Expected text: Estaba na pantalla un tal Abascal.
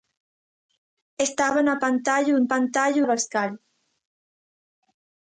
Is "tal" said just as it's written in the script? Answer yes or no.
no